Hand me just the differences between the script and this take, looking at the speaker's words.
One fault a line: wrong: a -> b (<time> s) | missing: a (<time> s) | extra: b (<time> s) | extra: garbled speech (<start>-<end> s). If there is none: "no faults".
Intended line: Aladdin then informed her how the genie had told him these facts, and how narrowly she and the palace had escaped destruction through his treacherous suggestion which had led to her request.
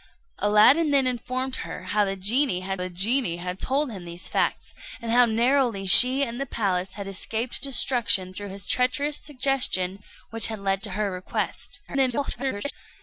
extra: the genie had (2.8 s)
extra: garbled speech (11.9-12.7 s)